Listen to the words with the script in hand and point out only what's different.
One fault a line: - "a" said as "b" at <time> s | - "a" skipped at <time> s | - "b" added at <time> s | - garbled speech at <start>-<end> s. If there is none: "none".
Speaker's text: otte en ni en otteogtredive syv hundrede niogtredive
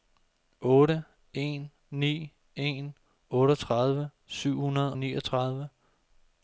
none